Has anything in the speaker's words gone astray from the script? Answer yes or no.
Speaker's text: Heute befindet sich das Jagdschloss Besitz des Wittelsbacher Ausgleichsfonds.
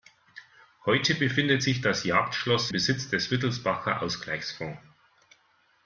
no